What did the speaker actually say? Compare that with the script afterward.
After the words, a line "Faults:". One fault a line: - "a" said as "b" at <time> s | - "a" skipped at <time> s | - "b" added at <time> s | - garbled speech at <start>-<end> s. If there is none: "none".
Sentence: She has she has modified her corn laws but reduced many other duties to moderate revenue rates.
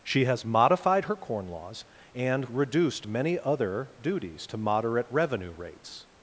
She has modified her corn laws and reduced many other duties to moderate revenue rates.
Faults:
- "she has" skipped at 0.5 s
- "but" said as "and" at 2.1 s